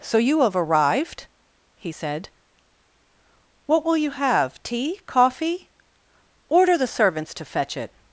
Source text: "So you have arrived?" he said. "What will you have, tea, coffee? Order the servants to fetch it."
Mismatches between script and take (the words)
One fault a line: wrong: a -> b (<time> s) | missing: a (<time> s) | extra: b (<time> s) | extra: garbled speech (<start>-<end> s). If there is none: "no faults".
no faults